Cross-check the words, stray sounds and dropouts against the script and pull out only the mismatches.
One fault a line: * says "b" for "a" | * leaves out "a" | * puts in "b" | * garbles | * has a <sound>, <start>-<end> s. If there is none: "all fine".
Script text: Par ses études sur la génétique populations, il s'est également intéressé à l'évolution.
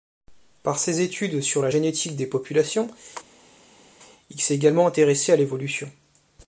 * puts in "des"